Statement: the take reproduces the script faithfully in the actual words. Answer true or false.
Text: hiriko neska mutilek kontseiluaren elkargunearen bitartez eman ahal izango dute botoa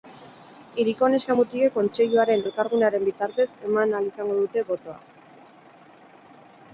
true